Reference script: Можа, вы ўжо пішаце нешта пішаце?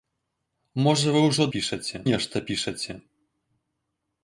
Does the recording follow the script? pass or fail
pass